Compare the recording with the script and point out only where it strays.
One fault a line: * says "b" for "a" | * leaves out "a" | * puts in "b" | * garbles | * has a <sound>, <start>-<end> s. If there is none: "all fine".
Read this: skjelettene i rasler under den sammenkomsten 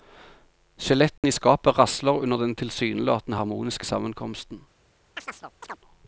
* has a dropout, 1.2-1.2 s
* puts in "skapet"
* puts in "tilsynelatende harmoniske"
* has a chirp, 5.2-5.8 s